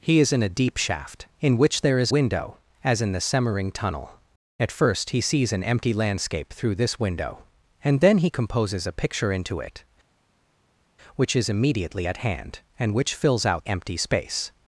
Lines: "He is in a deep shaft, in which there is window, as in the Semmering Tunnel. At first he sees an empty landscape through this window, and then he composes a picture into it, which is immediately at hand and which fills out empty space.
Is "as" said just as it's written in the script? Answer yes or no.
yes